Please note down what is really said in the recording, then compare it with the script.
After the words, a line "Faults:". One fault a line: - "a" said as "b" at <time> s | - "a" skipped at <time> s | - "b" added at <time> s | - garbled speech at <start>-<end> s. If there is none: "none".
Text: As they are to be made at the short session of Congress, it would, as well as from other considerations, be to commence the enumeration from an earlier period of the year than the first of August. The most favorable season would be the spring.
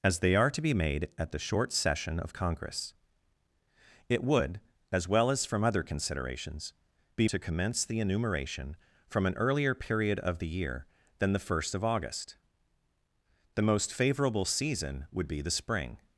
As they are to be made at the short session of Congress, it would, as well as from other considerations, be to commence the enumeration from an earlier period of the year than the first of August. The most favorable season would be the spring.
Faults:
none